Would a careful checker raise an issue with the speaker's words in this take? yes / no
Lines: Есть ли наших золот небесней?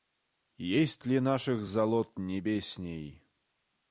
no